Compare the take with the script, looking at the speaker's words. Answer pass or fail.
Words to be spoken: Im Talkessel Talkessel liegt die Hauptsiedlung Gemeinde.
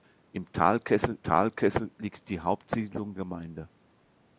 pass